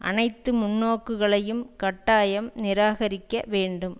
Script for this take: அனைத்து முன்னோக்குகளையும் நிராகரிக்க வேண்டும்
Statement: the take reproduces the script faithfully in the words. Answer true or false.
false